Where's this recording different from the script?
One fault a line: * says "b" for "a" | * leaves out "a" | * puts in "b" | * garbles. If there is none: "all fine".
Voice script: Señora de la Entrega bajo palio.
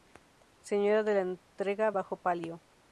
all fine